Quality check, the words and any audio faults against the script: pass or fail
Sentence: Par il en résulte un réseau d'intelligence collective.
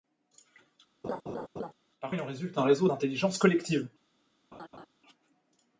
fail